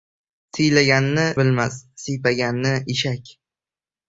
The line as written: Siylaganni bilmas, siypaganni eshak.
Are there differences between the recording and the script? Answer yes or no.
no